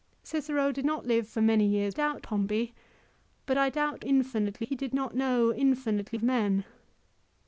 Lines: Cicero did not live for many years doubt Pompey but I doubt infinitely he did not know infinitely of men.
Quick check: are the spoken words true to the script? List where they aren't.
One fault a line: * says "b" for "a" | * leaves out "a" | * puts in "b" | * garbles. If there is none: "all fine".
all fine